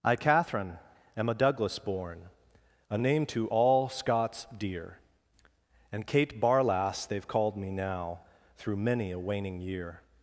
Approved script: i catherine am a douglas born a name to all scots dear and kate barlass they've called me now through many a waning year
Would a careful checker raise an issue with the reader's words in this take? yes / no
no